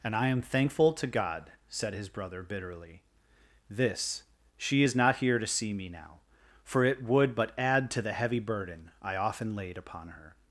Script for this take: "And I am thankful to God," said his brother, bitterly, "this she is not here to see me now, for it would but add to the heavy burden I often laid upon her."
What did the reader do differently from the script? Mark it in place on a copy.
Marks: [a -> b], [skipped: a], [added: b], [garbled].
"And I am thankful to God," said his brother, bitterly, "this she is not here to see me now, for it would but add to the heavy burden I often laid upon her."